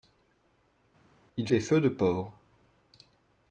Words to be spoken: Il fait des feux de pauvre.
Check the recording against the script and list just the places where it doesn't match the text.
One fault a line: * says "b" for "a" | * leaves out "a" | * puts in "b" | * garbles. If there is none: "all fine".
* leaves out "fait"